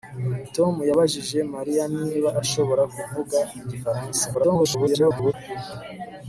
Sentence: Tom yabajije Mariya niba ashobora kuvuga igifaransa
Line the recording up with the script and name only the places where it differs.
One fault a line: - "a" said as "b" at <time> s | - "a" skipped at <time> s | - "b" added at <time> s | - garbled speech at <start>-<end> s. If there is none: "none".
- garbled speech at 4.3-5.3 s